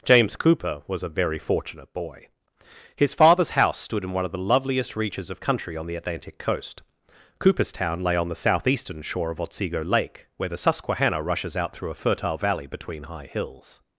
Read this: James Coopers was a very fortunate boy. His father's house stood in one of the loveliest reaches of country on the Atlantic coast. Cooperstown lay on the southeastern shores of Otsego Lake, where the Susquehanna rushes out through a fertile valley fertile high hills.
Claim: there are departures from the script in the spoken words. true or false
true